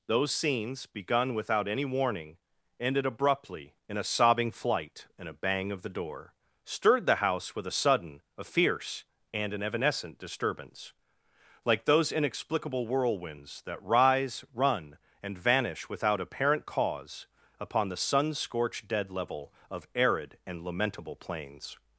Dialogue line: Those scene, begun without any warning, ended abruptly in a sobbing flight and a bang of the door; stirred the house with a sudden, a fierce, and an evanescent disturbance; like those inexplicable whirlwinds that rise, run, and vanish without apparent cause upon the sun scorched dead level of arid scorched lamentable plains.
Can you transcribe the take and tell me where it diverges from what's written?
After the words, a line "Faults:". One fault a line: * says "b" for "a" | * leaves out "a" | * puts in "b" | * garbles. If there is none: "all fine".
Those scenes, begun without any warning, ended abruptly in a sobbing flight and a bang of the door; stirred the house with a sudden, a fierce, and an evanescent disturbance; like those inexplicable whirlwinds that rise, run, and vanish without apparent cause upon the sun scorched dead level of arid and lamentable plains.
Faults:
* says "scenes" for "scene"
* says "and" for "scorched"